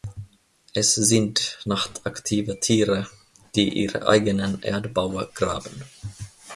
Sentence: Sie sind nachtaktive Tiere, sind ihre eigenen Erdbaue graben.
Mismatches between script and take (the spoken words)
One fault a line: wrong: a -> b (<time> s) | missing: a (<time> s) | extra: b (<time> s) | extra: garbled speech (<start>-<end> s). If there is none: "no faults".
wrong: Sie -> Es (0.7 s)
wrong: sind -> die (3.6 s)